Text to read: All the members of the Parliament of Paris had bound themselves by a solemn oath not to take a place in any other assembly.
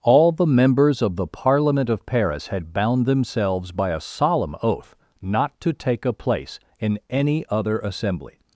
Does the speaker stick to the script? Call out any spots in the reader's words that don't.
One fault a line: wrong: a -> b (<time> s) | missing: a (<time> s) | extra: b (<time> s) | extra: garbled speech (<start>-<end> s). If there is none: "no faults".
no faults